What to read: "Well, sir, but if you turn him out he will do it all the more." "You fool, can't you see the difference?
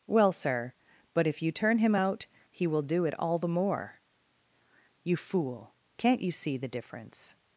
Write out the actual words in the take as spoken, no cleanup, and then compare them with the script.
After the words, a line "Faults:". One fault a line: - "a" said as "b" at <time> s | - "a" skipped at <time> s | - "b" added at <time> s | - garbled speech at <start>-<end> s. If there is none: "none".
"Well, sir, but if you turn him out he will do it all the more." "You fool, can't you see the difference?
Faults:
none